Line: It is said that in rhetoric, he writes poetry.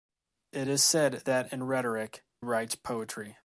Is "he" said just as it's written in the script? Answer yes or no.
no